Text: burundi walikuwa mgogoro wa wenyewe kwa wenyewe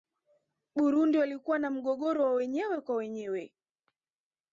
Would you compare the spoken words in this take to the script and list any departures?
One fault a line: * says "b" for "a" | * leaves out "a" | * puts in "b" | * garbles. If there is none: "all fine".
* puts in "na"